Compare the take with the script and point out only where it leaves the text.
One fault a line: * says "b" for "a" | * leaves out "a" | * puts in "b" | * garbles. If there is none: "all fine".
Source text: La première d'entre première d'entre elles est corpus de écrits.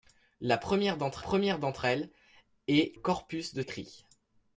all fine